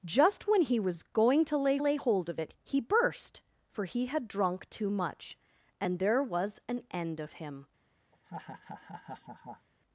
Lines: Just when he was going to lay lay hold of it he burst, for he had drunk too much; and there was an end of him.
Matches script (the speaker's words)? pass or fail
pass